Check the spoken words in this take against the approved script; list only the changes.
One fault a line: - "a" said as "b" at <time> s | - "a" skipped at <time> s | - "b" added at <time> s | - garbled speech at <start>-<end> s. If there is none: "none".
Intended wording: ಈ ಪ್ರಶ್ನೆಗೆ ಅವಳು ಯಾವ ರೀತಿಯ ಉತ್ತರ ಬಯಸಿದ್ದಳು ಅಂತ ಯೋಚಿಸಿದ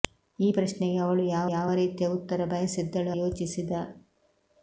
- "ಯಾವ" added at 1.5 s
- "ಅಂತ" skipped at 3.1 s